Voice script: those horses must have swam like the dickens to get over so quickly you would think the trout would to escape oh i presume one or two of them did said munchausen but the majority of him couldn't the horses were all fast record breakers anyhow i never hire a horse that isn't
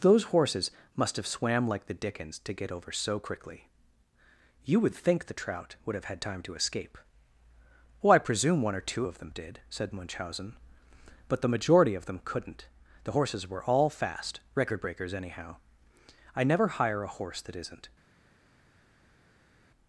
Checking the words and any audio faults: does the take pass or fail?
fail